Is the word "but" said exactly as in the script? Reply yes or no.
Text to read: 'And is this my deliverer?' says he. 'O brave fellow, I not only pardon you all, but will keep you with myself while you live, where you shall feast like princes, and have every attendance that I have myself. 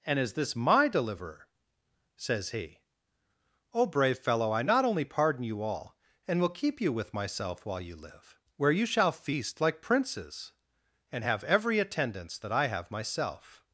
no